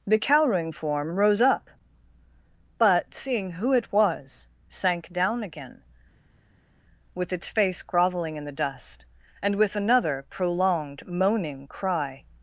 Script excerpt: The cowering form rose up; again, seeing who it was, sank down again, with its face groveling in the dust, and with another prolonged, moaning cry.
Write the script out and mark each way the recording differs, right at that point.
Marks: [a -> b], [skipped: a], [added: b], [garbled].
The cowering form rose up; [again, -> but] seeing who it was, sank down again, with its face groveling in the dust, and with another prolonged, moaning cry.